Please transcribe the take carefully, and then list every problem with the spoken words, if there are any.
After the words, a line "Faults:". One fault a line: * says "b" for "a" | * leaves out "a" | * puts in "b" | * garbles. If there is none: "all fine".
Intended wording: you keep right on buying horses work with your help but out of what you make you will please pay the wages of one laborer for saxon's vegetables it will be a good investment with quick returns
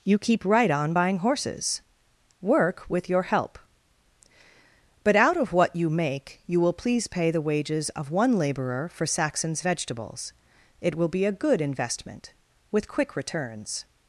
you keep right on buying horses work with your help but out of what you make you will please pay the wages of one laborer for saxon's vegetables it will be a good investment with quick returns
Faults:
all fine